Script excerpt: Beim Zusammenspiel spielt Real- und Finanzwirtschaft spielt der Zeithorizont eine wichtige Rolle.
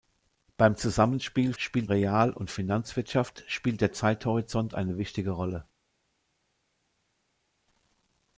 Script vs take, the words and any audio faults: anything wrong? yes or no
no